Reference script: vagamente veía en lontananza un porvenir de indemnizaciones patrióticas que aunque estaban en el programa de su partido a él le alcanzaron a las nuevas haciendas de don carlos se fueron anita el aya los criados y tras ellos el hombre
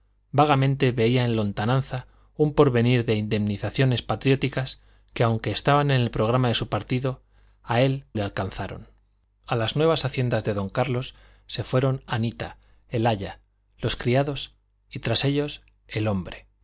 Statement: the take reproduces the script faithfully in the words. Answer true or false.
true